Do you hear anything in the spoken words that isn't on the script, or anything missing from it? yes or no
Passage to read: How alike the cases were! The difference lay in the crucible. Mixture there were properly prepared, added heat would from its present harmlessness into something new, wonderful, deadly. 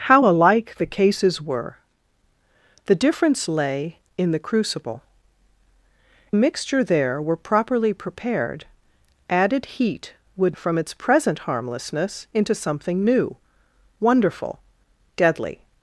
no